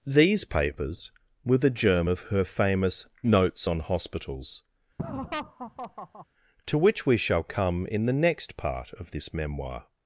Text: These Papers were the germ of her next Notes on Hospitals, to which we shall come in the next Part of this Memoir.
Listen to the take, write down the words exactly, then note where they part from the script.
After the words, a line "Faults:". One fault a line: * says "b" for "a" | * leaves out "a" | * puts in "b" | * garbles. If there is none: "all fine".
These Papers were the germ of her famous Notes on Hospitals, to which we shall come in the next Part of this Memoir.
Faults:
* says "famous" for "next"